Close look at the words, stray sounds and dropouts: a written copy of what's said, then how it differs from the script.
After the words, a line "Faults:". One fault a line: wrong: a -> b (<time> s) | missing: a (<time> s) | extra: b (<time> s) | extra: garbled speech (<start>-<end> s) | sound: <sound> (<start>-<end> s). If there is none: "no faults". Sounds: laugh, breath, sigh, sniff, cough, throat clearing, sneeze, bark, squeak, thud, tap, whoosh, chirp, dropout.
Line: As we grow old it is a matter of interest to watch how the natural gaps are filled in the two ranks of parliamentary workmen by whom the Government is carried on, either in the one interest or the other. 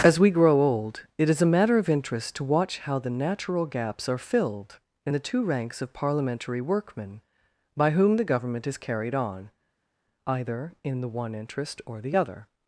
As we grow old it is a matter of interest to watch how the natural gaps are filled in the two ranks of parliamentary workmen by whom the Government is carried on, either in the one interest or the other.
Faults:
no faults